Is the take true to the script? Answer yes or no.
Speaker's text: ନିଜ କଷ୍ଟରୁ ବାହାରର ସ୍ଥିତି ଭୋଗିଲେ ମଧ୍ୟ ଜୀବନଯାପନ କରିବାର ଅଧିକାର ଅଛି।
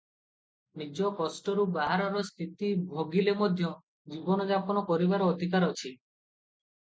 yes